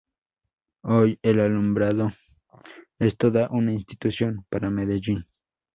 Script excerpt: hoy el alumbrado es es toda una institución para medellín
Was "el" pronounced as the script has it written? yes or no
yes